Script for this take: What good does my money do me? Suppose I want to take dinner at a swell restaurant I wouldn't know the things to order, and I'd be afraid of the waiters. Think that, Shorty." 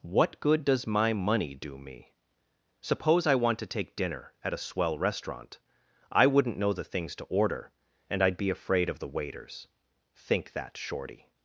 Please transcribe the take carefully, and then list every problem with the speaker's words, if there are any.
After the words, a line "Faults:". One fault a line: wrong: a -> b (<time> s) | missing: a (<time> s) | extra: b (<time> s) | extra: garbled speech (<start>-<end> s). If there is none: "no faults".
What good does my money do me? Suppose I want to take dinner at a swell restaurant I wouldn't know the things to order, and I'd be afraid of the waiters. Think that, Shorty."
Faults:
no faults